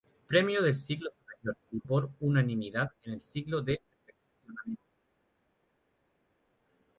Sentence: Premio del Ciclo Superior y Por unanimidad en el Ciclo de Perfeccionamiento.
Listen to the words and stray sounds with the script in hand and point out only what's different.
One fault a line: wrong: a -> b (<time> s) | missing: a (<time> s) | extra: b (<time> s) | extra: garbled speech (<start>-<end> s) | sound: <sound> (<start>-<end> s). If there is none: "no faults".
no faults